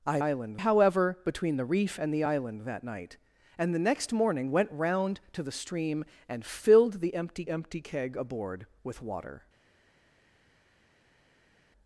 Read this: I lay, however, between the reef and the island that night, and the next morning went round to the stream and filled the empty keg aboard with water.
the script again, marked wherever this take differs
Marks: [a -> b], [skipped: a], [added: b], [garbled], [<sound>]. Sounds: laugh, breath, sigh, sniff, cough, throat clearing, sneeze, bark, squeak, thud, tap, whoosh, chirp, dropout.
I [lay, -> island] however, between the reef and the island that night, and the next morning went round to the stream and filled the empty [added: empty] keg aboard with water.